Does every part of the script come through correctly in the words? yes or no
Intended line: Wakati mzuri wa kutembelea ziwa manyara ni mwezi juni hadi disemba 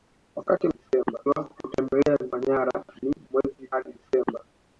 no